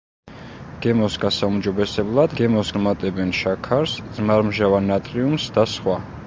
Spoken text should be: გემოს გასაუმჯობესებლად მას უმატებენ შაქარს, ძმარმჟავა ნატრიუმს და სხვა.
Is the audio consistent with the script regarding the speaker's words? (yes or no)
no